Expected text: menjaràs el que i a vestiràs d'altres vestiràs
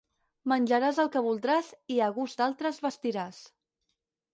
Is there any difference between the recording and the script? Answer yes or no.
yes